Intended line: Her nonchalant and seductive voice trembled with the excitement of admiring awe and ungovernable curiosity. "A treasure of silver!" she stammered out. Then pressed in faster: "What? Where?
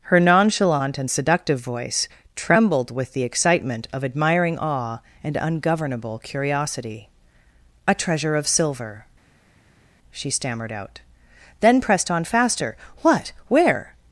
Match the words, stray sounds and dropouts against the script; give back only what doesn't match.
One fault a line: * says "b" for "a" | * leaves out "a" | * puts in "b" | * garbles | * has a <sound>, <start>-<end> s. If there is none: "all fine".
* says "on" for "in"